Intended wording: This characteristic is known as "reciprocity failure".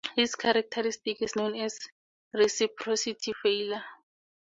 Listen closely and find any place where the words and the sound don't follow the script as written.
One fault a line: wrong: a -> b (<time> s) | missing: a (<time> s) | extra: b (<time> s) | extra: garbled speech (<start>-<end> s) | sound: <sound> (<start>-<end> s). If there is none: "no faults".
no faults